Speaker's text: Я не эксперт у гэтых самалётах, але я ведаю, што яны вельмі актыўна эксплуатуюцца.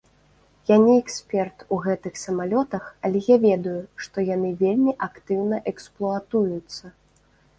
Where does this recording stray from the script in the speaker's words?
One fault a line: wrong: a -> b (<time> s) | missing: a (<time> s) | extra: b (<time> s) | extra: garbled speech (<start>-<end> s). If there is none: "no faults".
no faults